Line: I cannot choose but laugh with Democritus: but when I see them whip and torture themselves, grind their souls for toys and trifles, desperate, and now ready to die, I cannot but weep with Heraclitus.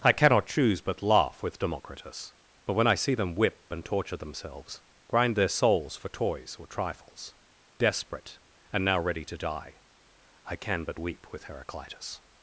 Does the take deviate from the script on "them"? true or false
false